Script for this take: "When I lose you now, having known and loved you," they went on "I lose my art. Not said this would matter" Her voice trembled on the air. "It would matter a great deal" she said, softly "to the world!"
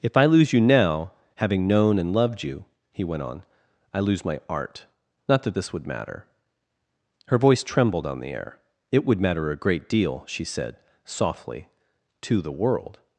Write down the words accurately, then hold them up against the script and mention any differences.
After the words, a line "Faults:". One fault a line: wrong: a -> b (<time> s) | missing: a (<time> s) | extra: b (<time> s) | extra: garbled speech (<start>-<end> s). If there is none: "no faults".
"If I lose you now, having known and loved you," he went on "I lose my art. Not that this would matter" Her voice trembled on the air. "It would matter a great deal" she said, softly "to the world!"
Faults:
wrong: When -> If (0.0 s)
wrong: they -> he (2.9 s)
wrong: said -> that (5.4 s)